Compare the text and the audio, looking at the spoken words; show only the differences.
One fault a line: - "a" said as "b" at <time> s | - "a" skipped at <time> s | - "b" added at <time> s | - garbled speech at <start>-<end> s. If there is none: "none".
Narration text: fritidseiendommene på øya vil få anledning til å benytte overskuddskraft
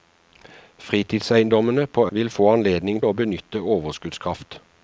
- "øya" skipped at 2.1 s
- "til" skipped at 3.0 s